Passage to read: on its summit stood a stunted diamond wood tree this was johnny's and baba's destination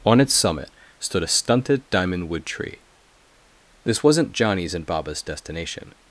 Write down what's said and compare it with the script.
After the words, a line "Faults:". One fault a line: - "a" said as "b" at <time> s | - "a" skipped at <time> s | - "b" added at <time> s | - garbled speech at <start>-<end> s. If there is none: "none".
on its summit stood a stunted diamond wood tree this wasn't johnny's and baba's destination
Faults:
- "was" said as "wasn't" at 4.0 s